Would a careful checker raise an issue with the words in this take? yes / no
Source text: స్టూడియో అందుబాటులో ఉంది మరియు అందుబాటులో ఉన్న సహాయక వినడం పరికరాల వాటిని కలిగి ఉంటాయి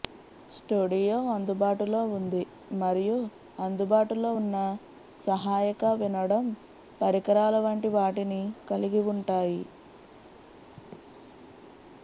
yes